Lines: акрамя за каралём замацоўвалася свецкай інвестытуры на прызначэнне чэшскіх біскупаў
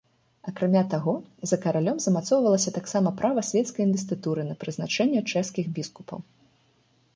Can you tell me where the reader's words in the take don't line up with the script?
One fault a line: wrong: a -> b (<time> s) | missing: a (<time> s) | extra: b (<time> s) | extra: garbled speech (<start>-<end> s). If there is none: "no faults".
extra: таго (0.9 s)
extra: таксама права (2.8 s)